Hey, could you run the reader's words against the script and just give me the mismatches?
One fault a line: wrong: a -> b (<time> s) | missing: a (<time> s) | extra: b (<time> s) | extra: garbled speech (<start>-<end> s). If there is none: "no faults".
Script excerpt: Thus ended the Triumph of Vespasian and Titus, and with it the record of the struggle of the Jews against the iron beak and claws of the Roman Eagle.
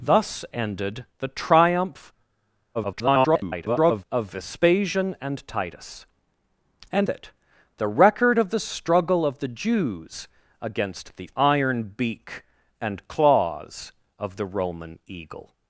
extra: garbled speech (2.7-4.0 s)
missing: with (7.1 s)